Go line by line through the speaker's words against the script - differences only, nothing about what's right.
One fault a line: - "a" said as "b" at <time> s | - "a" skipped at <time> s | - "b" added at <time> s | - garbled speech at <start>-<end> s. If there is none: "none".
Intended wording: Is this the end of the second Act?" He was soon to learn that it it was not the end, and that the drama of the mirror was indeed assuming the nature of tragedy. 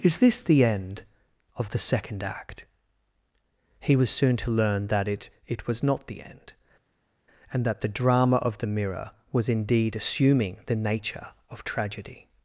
none